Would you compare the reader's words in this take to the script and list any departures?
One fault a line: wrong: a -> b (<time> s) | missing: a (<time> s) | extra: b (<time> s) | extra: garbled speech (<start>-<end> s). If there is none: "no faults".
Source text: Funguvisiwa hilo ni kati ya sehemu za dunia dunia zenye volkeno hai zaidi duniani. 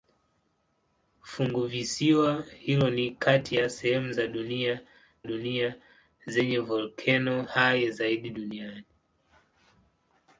no faults